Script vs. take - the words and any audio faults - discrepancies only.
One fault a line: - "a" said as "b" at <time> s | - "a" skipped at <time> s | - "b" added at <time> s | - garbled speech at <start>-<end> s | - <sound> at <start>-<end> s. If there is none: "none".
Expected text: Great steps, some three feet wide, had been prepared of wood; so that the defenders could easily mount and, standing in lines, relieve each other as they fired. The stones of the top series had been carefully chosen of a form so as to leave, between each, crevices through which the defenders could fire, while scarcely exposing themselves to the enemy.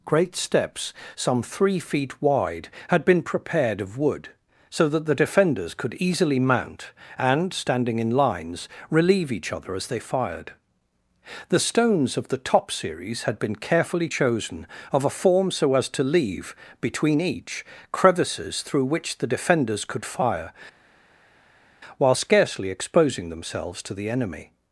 none